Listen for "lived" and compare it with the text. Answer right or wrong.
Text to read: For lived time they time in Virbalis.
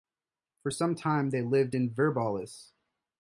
wrong